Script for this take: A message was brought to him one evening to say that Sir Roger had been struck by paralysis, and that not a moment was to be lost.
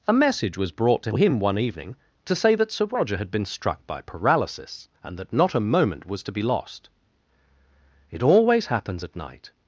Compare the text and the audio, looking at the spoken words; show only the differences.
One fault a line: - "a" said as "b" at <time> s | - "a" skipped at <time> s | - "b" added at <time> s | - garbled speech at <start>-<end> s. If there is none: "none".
- "It always happens at night" added at 8.1 s